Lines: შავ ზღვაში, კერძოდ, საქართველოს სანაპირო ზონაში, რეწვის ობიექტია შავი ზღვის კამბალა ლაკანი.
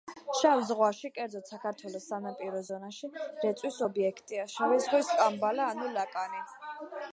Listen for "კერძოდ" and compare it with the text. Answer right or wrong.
right